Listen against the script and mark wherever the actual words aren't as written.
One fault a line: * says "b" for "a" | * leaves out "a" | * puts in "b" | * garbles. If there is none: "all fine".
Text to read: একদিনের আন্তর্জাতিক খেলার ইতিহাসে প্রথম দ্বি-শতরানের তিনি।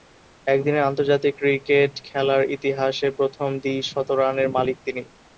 * puts in "ক্রিকেট"
* puts in "মালিক"